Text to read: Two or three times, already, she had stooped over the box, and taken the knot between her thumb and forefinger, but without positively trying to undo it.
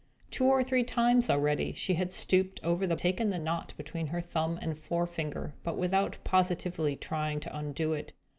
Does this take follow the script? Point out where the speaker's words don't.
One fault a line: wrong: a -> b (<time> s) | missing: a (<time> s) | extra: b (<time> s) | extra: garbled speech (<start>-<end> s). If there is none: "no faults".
missing: box and (3.0 s)